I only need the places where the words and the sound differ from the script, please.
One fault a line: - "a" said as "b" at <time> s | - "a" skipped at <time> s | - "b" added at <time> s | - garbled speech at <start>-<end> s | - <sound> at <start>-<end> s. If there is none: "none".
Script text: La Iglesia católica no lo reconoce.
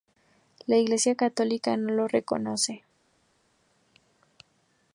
none